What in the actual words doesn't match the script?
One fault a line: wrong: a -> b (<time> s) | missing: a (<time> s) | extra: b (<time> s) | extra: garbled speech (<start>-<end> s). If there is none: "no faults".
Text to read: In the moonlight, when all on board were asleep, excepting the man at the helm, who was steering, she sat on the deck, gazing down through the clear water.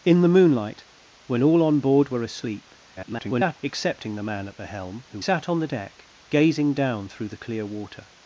extra: garbled speech (2.9-3.6 s)
missing: was steering she (5.2 s)